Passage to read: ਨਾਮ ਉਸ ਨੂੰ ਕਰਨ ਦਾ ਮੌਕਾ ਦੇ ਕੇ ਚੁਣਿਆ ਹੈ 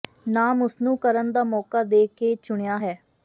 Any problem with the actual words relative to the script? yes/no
no